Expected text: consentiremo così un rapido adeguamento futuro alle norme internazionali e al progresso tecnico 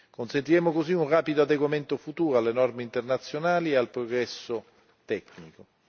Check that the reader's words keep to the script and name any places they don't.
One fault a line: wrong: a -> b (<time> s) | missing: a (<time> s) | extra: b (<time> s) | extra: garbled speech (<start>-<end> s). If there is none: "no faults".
no faults